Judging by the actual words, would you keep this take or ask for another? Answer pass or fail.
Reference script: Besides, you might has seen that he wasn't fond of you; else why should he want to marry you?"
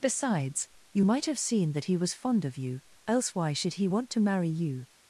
fail